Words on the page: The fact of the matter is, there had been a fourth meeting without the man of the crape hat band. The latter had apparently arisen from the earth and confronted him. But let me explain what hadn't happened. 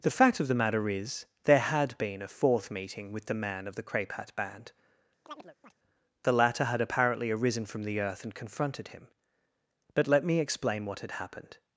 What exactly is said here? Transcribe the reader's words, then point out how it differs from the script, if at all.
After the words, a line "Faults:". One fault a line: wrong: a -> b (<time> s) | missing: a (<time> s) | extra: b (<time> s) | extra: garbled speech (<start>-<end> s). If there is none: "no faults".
The fact of the matter is, there had been a fourth meeting with the man of the crape hat band. The latter had apparently arisen from the earth and confronted him. But let me explain what had happened.
Faults:
wrong: without -> with (3.1 s)
wrong: hadn't -> had (11.0 s)